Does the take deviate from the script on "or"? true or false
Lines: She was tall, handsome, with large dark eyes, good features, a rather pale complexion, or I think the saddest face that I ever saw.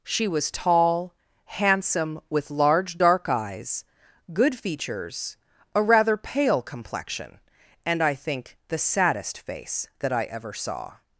true